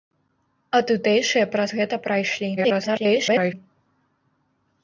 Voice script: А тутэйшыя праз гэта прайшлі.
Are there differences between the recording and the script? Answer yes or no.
yes